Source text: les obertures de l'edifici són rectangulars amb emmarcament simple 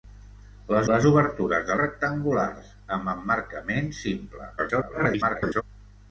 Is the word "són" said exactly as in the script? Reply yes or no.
no